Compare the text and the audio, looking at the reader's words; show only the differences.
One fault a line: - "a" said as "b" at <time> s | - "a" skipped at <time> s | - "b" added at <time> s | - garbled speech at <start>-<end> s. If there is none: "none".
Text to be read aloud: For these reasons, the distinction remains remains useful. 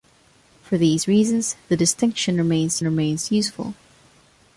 none